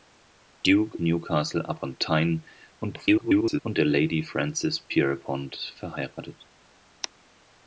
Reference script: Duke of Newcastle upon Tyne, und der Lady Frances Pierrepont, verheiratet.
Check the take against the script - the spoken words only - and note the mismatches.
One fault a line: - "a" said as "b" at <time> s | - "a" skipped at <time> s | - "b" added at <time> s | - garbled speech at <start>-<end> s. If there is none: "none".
- "of" skipped at 1.0 s
- garbled speech at 2.8-3.6 s